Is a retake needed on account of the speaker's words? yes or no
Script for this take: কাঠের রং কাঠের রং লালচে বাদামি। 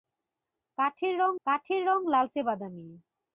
no